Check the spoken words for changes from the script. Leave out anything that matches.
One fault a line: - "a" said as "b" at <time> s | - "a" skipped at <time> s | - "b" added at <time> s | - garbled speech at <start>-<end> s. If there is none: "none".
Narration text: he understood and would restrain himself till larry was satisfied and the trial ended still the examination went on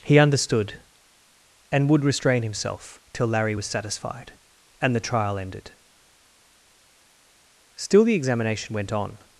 none